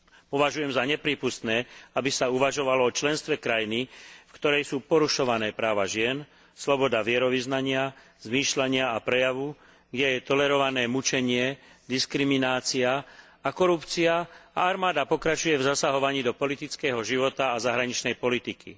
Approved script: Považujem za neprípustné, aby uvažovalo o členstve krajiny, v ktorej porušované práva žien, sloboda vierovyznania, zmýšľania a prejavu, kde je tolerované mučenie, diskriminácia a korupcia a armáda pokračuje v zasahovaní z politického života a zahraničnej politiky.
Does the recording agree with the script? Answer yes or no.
no